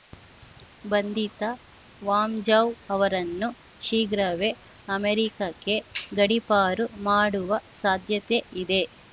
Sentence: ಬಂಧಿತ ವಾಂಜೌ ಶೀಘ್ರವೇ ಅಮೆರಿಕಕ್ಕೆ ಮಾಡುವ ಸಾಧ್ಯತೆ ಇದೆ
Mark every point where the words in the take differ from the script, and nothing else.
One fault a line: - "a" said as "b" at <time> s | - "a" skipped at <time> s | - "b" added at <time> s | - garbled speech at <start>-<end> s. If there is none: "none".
- "ಅವರನ್ನು" added at 2.9 s
- "ಗಡೀಪಾರು" added at 6.1 s